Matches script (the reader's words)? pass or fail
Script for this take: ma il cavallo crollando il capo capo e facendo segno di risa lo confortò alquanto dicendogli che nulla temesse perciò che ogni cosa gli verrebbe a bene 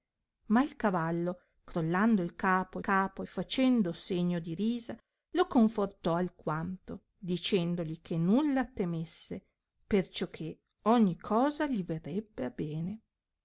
pass